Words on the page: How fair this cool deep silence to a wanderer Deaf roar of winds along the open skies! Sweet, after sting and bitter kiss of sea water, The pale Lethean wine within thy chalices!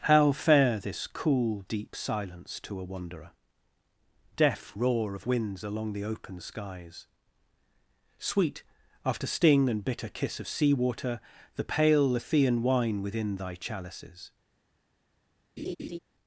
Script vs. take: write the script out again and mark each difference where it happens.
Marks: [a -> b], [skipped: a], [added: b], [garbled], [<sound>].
How fair this cool deep silence to a wanderer Deaf roar of winds along the open skies! Sweet, after sting and bitter kiss of sea water, The pale Lethean wine within thy chalices! [laugh]